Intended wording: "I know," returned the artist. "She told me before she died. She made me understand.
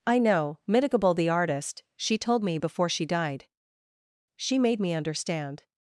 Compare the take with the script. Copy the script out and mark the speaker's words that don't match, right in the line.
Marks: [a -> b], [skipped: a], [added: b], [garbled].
"I know," [returned -> mitigable] the artist. "She told me before she died. She made me understand.